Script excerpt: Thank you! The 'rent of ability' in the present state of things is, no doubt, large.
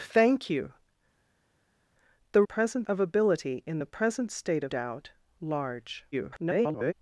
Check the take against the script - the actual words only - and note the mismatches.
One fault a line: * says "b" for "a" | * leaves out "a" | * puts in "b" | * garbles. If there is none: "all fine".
* says "present" for "rent"
* leaves out "things is no"
* garbles